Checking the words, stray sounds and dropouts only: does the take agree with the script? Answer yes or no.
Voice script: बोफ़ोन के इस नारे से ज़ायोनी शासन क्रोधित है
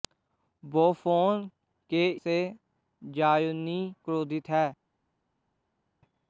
no